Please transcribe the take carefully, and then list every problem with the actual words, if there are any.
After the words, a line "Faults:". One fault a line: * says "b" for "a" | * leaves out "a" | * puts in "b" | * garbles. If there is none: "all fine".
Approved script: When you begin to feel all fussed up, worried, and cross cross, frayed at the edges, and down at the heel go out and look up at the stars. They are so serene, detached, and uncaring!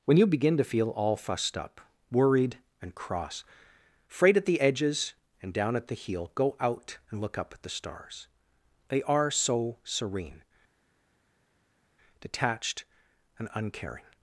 When you begin to feel all fussed up, worried, and cross, frayed at the edges, and down at the heel go out and look up at the stars. They are so serene, detached, and uncaring!
Faults:
* leaves out "cross"